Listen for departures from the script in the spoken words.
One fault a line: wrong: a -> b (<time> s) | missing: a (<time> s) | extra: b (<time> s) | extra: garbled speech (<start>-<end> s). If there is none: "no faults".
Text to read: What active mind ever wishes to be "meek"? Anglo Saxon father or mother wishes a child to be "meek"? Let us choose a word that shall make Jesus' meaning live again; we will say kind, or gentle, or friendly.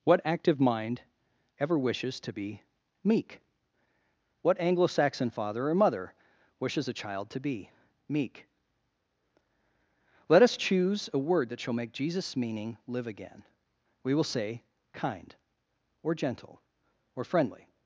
extra: What (4.4 s)